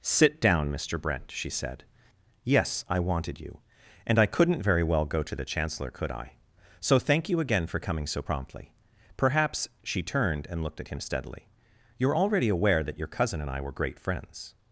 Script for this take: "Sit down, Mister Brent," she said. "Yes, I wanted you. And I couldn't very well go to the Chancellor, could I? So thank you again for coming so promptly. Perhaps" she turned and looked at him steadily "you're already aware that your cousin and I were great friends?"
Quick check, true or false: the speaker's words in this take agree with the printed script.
true